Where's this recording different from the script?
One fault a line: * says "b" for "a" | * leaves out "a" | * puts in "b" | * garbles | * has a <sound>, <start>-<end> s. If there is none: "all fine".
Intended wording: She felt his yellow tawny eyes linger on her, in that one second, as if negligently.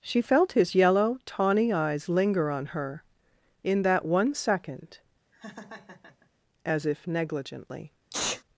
* has a laugh, 5.3-6.3 s
* has a sneeze, 8.1-8.4 s